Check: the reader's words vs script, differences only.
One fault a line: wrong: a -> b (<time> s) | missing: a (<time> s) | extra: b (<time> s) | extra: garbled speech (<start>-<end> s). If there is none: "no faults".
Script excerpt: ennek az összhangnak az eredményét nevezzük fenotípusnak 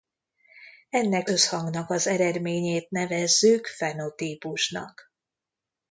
missing: az (1.3 s)